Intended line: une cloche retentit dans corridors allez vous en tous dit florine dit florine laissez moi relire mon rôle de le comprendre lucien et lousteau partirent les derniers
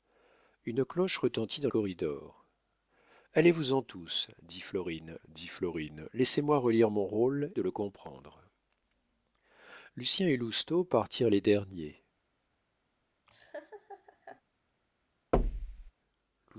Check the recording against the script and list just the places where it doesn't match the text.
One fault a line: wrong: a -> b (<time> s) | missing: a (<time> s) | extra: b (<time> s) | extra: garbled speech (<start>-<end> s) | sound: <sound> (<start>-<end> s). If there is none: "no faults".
sound: laugh (13.3-14.4 s)
sound: thud (15.3-15.9 s)